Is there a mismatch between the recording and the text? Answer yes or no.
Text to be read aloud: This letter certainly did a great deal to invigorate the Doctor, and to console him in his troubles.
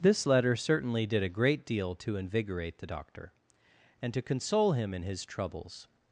no